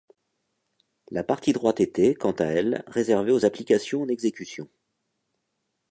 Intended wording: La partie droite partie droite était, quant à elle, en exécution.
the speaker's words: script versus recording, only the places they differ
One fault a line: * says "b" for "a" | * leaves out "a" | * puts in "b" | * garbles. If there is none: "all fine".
* leaves out "partie droite"
* puts in "réservée aux applications"